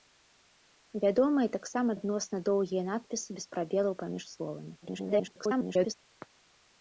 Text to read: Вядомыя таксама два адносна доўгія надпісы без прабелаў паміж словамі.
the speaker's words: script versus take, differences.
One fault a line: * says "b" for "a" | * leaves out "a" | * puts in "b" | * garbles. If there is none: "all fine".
* leaves out "два"
* garbles